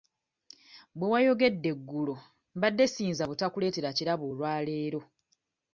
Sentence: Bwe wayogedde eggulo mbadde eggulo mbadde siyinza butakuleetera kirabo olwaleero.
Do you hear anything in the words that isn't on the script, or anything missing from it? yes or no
yes